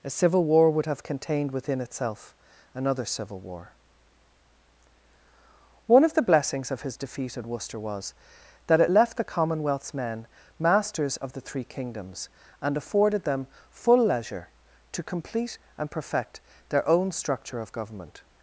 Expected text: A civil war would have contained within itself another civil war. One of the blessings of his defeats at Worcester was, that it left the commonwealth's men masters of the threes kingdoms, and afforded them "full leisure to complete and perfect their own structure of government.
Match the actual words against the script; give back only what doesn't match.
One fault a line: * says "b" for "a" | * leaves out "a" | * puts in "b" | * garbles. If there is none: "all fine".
* says "defeat" for "defeats"
* says "three" for "threes"